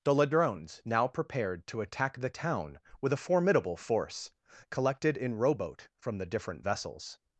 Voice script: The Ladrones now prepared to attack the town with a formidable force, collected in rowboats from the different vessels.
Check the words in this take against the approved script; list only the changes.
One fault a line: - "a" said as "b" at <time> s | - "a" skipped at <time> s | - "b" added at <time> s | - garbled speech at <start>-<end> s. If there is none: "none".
- "rowboats" said as "rowboat" at 5.3 s